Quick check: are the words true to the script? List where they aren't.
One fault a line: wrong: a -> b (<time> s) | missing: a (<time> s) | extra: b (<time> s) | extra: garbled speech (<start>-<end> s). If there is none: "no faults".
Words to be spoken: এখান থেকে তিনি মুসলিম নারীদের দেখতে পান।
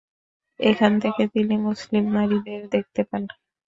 no faults